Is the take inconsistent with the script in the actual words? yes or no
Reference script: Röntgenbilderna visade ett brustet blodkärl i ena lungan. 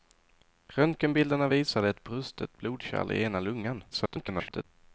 yes